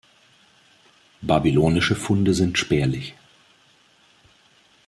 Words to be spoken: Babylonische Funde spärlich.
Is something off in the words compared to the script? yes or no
yes